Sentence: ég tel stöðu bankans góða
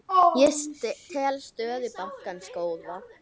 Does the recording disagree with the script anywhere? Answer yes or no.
no